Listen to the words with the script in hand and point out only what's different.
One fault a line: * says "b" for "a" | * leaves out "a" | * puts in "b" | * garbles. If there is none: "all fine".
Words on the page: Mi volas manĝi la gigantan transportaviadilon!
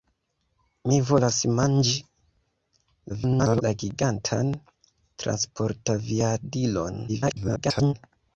* garbles
* garbles